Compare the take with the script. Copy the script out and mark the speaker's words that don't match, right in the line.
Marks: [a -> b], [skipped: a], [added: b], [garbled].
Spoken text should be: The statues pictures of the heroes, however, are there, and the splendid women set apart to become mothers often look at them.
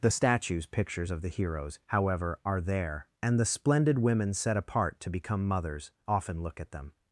The statues pictures of the heroes, however, are there, and the splendid women set apart to become mothers often look at them.